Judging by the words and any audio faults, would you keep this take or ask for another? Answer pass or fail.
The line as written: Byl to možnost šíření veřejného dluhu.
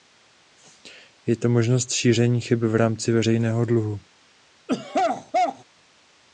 fail